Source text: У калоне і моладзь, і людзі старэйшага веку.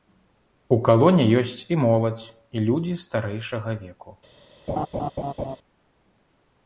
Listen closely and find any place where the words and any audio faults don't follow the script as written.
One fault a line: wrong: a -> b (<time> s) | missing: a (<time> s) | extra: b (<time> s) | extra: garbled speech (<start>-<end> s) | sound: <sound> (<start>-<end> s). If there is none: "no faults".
extra: ёсць (1.4 s)
sound: laugh (4.7-5.6 s)